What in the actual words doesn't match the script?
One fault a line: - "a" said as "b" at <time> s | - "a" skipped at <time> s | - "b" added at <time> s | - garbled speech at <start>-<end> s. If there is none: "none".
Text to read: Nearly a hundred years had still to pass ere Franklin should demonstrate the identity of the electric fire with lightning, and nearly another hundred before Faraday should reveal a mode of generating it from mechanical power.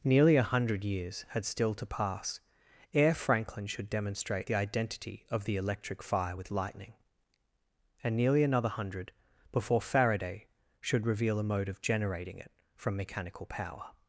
none